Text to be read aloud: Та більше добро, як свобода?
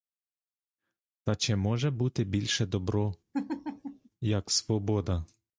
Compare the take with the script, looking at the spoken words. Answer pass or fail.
fail